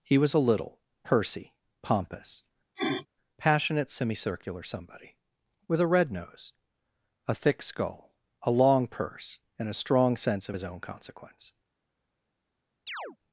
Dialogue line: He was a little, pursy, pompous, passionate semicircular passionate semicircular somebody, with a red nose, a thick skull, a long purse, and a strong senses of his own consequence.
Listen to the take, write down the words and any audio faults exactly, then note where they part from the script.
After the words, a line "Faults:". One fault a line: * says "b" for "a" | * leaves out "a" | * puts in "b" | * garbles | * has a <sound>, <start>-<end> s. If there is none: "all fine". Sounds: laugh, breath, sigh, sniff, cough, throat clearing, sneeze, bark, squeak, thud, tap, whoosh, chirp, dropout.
He was a little, pursy, pompous, passionate semicircular somebody, with a red nose, a thick skull, a long purse, and a strong sense of his own consequence.
Faults:
* has a sniff, 2.8-3.1 s
* leaves out "passionate semicircular"
* says "sense" for "senses"
* has a chirp, 12.9-13.2 s